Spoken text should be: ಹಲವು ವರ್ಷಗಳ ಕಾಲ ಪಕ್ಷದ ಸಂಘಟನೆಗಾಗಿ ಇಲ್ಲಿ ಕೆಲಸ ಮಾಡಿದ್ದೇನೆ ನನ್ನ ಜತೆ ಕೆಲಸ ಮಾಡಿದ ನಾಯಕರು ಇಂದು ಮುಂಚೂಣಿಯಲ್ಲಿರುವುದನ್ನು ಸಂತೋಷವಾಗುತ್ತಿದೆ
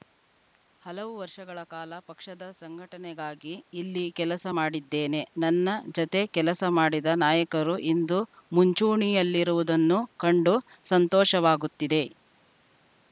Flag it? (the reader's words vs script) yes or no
yes